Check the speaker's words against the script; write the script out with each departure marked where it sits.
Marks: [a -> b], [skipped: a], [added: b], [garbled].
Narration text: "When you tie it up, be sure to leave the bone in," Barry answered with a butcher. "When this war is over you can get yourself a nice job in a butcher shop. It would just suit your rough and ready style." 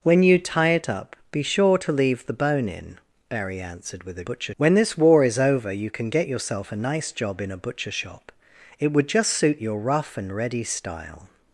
"When you tie it up, be sure to leave the bone in," Barry answered with a butcher. "When this war is over you can get yourself a nice job in a butcher shop. It would just suit your rough and ready style."